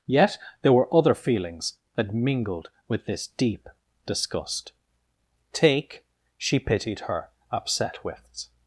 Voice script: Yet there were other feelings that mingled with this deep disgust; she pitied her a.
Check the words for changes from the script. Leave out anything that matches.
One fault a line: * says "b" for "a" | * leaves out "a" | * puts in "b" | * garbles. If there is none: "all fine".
* puts in "take"
* says "upset wits" for "a"